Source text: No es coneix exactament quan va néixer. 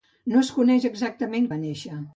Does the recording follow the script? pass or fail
fail